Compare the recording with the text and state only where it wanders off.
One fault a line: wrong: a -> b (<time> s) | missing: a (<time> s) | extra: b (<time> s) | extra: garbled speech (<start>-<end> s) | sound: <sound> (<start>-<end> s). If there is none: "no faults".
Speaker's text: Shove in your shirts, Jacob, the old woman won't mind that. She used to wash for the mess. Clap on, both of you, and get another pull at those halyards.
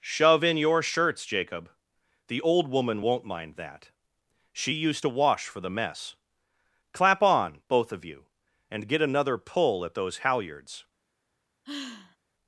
sound: sigh (11.6-12.2 s)